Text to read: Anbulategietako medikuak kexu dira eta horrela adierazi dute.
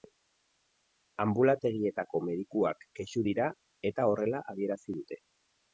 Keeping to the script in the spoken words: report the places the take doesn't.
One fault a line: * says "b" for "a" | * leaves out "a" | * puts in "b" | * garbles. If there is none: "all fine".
all fine